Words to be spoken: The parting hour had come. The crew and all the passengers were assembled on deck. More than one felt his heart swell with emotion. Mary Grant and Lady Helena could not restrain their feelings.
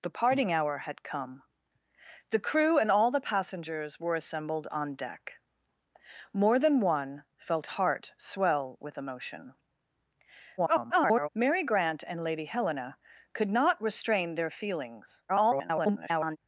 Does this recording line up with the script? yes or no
no